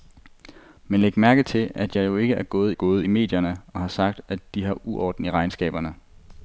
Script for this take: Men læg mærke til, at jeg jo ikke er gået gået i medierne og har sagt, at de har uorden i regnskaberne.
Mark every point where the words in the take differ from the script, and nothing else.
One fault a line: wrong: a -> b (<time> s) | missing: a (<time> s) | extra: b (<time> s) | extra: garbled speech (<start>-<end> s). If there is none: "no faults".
no faults